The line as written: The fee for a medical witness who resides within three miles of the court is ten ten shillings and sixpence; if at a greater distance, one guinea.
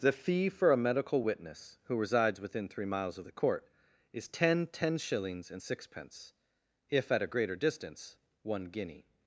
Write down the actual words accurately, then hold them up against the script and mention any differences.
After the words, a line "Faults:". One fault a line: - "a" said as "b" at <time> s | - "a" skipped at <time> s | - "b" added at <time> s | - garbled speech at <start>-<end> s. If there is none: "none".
The fee for a medical witness who resides within three miles of the court is ten ten shillings and sixpence; if at a greater distance, one guinea.
Faults:
none